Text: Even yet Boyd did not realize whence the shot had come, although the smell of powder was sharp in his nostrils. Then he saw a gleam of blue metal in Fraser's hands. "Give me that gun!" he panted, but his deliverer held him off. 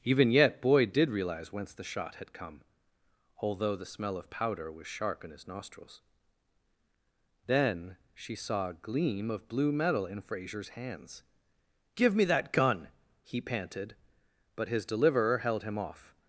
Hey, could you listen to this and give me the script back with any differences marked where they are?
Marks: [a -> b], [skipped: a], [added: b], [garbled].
Even yet Boyd did [skipped: not] realize whence the shot had come, although the smell of powder was sharp in his nostrils. Then [he -> she] saw a gleam of blue metal in Fraser's hands. "Give me that gun!" he panted, but his deliverer held him off.